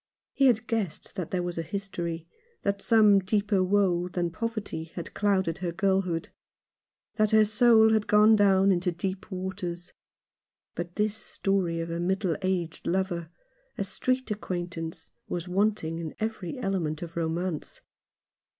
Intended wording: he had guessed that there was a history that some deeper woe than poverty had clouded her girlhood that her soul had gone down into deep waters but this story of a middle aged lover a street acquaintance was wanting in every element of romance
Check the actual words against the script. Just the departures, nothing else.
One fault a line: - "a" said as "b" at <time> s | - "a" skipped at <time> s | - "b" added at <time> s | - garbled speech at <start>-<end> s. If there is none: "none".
none